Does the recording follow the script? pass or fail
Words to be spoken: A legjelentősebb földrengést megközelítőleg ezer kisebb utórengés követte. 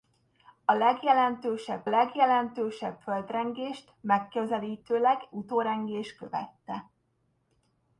fail